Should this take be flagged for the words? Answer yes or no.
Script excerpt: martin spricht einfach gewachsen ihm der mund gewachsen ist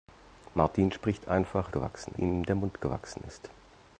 no